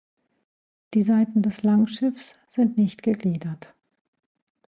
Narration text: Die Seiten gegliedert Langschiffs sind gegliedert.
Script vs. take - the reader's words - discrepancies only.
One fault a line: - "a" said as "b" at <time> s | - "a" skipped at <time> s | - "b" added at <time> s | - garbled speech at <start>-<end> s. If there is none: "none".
- "gegliedert" said as "des" at 1.4 s
- "nicht" added at 2.8 s